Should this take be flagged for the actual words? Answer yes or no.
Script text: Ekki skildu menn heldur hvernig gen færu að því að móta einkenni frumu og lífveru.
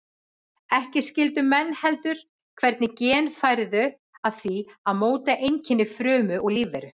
no